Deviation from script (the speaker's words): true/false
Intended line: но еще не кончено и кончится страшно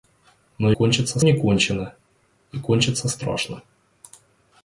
true